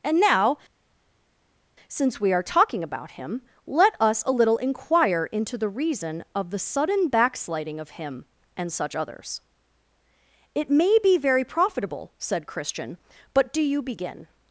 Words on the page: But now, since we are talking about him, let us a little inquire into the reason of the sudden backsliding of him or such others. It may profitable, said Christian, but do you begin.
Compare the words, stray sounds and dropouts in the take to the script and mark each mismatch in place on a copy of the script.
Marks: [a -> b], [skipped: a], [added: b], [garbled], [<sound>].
[But -> And] now, since we are talking about him, let us a little inquire into the reason of the sudden backsliding of him [or -> and] such others. It may [added: be very] profitable, said Christian, but do you begin.